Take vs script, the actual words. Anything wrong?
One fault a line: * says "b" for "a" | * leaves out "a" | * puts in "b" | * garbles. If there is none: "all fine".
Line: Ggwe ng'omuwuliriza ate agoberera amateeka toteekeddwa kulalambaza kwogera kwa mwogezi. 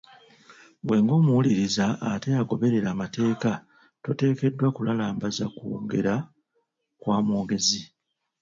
all fine